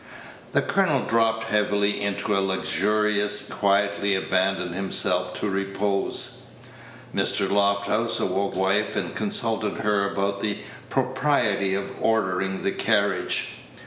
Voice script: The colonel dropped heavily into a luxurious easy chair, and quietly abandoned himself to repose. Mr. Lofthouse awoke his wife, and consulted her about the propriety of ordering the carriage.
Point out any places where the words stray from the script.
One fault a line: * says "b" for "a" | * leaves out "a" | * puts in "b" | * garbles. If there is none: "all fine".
* leaves out "easy chair and"
* leaves out "his"